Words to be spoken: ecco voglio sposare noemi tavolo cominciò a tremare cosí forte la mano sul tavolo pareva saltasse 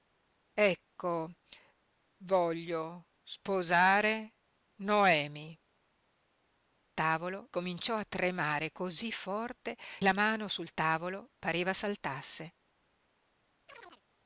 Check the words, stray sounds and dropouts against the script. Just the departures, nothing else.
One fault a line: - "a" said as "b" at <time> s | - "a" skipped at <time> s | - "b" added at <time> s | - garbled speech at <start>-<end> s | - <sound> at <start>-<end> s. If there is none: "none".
- chirp at 13.7-14.0 s